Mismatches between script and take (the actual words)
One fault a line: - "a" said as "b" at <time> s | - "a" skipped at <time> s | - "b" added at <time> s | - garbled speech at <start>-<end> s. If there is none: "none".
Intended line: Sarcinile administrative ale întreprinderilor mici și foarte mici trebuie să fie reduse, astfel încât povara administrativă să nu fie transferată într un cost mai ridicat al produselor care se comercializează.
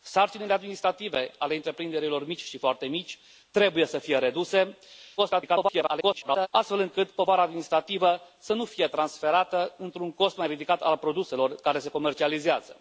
- garbled speech at 5.2-6.5 s